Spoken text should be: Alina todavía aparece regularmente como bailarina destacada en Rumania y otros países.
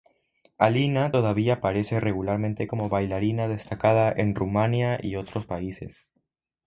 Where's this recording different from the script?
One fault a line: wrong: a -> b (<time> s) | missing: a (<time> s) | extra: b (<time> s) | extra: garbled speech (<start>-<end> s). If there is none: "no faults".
no faults